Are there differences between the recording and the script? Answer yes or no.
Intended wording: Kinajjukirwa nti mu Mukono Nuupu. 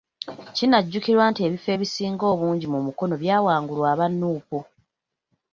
yes